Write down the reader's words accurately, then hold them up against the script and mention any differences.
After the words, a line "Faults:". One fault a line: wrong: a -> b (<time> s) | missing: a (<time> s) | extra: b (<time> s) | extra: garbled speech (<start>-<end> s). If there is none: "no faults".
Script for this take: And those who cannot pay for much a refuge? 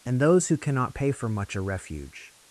And those who cannot pay for much a refuge?
Faults:
no faults